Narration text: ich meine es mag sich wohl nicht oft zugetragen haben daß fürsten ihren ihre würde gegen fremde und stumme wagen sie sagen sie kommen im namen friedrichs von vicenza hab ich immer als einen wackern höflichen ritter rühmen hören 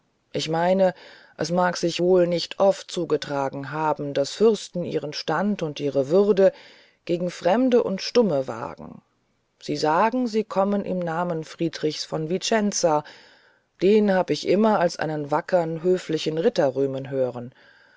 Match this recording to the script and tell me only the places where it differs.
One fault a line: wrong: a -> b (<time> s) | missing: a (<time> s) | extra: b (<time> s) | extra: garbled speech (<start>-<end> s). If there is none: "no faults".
extra: stand und (5.1 s)
extra: den (13.8 s)